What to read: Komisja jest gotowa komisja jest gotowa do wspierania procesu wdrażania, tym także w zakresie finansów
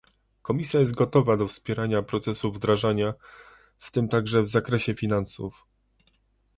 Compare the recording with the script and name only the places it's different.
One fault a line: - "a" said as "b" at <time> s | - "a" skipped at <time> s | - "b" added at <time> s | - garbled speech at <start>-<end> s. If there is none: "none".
- "komisja jest gotowa" skipped at 1.4 s
- "w" added at 3.8 s